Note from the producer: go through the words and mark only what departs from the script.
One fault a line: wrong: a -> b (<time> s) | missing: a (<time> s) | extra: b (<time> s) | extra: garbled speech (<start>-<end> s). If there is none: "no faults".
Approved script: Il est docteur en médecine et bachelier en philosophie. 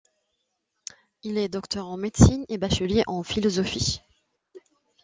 no faults